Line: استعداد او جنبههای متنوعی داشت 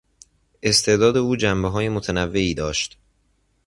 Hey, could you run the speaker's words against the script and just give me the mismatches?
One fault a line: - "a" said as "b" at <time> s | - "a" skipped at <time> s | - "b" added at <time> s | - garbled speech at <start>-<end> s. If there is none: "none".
none